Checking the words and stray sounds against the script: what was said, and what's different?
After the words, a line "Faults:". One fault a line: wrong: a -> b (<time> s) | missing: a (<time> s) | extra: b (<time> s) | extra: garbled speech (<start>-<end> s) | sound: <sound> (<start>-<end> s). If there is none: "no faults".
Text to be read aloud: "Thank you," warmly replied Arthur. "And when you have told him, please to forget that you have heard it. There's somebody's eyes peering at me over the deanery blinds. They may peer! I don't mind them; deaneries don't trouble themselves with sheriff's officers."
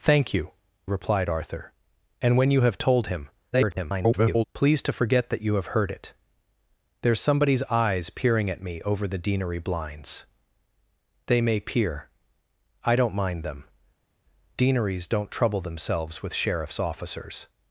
"Thank you," replied Arthur. "And when you have told him, [garbled] please to forget that you have heard it. There's somebody's eyes peering at me over the deanery blinds. They may peer! I don't mind them; deaneries don't trouble themselves with sheriff's officers."
Faults:
missing: warmly (0.5 s)
extra: garbled speech (3.5-4.4 s)